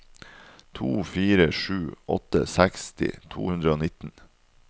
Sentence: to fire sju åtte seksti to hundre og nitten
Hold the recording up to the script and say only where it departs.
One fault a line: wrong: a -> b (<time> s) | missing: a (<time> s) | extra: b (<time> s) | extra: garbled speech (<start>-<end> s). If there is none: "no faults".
no faults